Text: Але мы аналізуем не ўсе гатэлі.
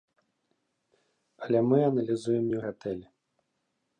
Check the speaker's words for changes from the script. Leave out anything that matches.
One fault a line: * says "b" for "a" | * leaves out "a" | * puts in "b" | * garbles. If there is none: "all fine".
* leaves out "ўсе"